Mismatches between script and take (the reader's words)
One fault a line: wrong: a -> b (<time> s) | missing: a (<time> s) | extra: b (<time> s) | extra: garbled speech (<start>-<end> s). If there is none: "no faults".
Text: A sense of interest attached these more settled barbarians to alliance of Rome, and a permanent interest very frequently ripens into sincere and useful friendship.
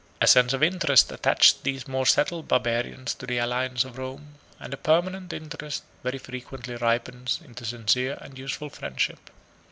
extra: the (3.3 s)